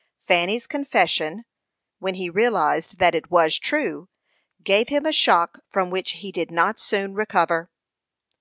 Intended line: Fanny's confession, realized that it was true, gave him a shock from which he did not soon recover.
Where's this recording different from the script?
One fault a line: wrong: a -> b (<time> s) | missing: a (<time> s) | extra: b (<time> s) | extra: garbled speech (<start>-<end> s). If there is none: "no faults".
extra: when he (2.0 s)